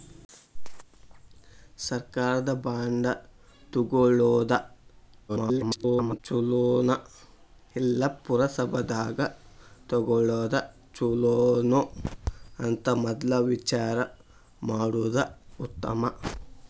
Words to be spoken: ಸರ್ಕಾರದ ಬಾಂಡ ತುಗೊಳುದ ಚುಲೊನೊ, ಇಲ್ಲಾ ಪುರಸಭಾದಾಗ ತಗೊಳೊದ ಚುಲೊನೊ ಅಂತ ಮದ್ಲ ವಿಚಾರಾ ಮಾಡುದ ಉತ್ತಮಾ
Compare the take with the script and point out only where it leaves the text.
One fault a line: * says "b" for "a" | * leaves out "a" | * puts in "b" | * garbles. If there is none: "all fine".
* garbles